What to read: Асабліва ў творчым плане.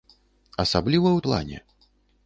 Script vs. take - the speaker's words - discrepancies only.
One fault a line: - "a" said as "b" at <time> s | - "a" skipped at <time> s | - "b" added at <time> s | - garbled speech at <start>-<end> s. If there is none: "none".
- "творчым" skipped at 1.2 s